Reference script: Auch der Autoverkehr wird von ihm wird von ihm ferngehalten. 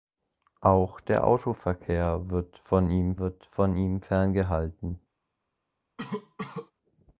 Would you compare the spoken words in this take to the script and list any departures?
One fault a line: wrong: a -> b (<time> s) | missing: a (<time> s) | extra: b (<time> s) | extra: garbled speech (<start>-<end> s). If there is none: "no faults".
no faults